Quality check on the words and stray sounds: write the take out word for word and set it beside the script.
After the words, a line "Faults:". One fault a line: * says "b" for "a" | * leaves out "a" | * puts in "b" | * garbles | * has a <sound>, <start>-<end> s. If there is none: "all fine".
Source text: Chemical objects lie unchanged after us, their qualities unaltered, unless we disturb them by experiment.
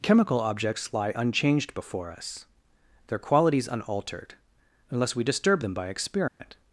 Chemical objects lie unchanged before us, their qualities unaltered, unless we disturb them by experiment.
Faults:
* says "before" for "after"
* has a dropout, 6.3-6.4 s